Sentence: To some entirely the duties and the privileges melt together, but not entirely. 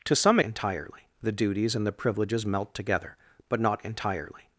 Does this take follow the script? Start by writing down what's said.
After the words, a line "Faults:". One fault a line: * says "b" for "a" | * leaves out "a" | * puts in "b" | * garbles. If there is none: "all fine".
To some entirely the duties and the privileges melt together, but not entirely.
Faults:
all fine